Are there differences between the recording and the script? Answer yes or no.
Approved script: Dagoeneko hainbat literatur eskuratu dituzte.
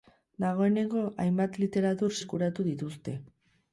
no